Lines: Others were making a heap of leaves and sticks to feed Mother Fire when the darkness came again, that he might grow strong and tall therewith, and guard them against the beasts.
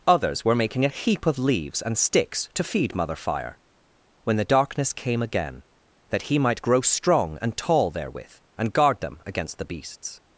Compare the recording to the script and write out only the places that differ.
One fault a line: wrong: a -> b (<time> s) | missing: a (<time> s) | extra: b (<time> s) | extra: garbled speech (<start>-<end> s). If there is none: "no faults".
no faults